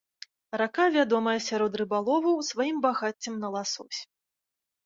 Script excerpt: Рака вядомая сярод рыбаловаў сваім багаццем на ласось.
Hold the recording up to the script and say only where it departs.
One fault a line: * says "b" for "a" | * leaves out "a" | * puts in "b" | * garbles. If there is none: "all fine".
all fine